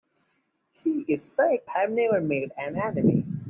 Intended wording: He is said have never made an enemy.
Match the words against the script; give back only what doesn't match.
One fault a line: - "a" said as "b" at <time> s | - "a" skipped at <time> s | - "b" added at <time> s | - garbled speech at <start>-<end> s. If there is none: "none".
none